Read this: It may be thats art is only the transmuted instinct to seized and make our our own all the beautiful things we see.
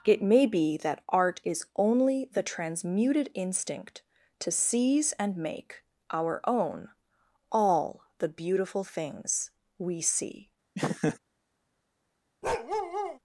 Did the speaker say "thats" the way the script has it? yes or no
no